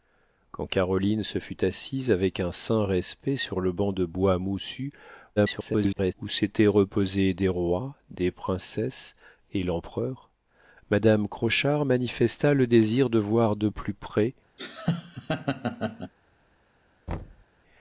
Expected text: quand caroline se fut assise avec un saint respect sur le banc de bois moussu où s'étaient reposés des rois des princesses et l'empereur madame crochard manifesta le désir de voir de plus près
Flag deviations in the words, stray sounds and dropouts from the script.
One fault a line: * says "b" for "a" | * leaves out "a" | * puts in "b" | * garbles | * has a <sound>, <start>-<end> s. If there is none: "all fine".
* garbles
* has a laugh, 14.6-16.1 s
* has a thud, 17.1-17.5 s